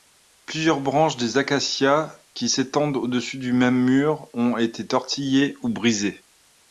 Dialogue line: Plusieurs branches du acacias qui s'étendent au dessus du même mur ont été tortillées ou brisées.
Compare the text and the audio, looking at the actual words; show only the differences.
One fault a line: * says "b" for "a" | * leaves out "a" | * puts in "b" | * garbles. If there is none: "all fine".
* says "des" for "du"